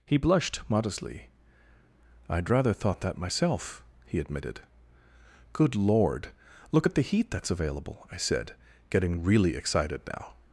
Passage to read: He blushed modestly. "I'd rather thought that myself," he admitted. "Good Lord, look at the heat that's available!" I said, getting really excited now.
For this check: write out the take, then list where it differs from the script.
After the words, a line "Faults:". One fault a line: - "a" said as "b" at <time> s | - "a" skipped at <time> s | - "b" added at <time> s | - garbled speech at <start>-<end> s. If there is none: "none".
He blushed modestly. "I'd rather thought that myself," he admitted. "Good Lord, look at the heat that's available!" I said, getting really excited now.
Faults:
none